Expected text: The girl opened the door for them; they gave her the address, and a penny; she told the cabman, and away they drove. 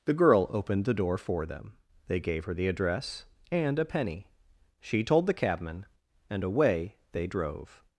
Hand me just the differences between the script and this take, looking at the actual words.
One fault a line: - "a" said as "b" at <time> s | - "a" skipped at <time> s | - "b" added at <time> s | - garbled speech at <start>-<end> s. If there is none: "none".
none